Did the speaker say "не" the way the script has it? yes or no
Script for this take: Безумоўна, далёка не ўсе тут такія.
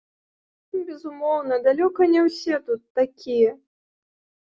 yes